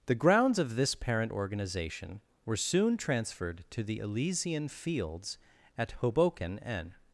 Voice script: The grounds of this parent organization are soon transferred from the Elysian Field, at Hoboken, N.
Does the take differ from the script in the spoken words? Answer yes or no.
yes